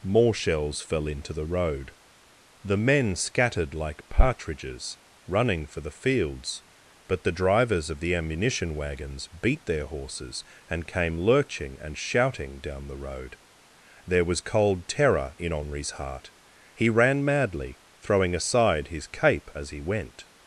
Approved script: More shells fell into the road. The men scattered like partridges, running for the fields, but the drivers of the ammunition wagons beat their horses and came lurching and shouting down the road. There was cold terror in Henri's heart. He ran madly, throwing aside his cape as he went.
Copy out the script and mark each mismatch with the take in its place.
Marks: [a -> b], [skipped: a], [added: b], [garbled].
More shells fell into the road. The men scattered like partridges, running for the fields, but the drivers of the ammunition wagons beat their horses and came lurching and shouting down the road. There was cold terror in Henri's heart. He ran madly, throwing aside his cape as he went.